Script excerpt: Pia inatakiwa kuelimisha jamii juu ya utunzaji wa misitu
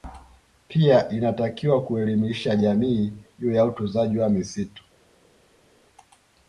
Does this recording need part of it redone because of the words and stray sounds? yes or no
no